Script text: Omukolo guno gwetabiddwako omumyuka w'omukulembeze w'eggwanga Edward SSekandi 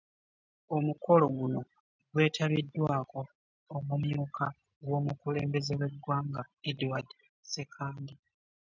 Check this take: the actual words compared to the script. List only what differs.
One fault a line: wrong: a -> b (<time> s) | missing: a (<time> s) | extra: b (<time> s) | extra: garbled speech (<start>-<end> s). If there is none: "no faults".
no faults